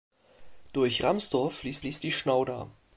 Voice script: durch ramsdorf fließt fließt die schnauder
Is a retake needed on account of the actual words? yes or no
no